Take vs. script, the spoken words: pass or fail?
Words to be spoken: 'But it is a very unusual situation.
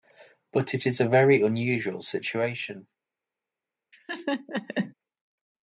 pass